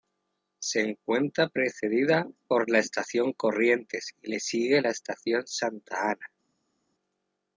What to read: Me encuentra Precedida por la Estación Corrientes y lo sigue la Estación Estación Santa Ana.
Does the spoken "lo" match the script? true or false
false